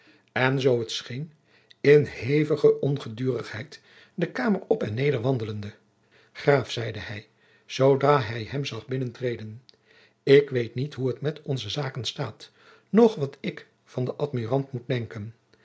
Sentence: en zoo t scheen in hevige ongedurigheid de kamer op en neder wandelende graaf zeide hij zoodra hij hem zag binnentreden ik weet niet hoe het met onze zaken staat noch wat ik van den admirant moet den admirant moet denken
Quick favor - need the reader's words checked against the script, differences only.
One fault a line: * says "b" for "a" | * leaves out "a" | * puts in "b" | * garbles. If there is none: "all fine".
* leaves out "den admirant moet"